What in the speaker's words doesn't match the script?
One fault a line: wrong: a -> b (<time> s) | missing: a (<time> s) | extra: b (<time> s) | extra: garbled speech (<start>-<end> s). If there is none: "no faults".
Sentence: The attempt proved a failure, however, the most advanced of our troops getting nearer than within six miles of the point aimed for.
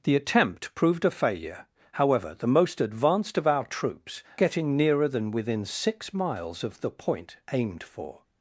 no faults